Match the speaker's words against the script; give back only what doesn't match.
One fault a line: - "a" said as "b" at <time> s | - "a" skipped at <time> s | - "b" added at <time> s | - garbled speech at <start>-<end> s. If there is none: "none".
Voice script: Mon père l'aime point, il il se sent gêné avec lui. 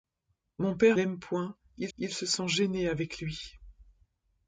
none